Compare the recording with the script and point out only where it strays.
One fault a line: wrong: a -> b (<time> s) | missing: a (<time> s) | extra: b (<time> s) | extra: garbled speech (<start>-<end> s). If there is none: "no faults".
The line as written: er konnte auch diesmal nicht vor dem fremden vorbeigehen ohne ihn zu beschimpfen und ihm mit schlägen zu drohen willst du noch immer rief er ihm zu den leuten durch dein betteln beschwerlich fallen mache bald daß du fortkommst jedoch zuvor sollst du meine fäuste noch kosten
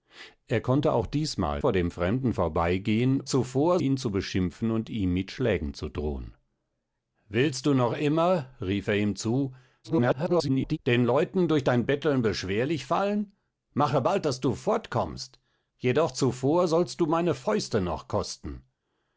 missing: nicht (1.6 s)
wrong: ohne -> zuvor (3.2 s)
extra: garbled speech (9.8-10.8 s)